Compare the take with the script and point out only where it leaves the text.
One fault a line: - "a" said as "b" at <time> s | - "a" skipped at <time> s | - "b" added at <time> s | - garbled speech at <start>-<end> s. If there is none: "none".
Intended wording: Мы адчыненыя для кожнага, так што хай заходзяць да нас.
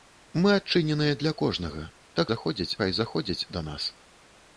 - "што" said as "заходзяць" at 2.3 s